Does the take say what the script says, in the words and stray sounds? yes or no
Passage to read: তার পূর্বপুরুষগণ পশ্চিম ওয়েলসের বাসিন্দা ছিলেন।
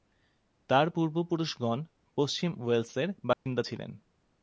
no